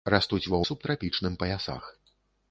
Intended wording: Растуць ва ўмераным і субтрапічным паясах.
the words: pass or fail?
fail